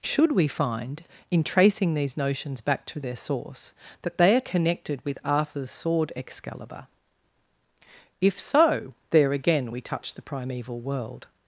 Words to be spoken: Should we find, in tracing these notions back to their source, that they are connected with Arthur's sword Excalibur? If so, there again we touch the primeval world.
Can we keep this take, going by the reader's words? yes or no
yes